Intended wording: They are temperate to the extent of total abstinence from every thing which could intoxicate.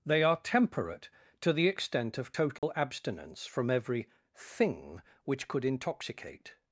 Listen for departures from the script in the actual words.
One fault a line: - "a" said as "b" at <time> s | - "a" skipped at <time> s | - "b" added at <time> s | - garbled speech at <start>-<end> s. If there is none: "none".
none